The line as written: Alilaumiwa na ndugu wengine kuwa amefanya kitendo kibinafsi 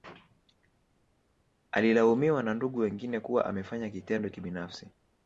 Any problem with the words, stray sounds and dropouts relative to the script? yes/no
no